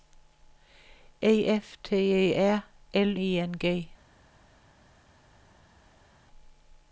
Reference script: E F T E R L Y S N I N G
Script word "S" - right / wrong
wrong